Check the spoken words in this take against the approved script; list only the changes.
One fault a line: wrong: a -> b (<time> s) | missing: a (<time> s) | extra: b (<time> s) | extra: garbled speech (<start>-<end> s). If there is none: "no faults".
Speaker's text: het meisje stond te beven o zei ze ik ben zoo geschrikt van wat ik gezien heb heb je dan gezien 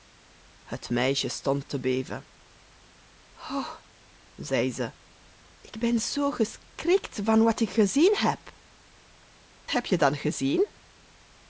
no faults